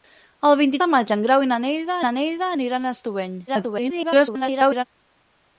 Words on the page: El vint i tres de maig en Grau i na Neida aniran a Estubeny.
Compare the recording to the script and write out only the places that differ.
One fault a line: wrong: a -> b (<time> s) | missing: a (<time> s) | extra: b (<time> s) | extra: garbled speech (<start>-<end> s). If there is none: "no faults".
missing: tres (0.8 s)
extra: na Neida (2.0 s)
extra: garbled speech (3.5-4.8 s)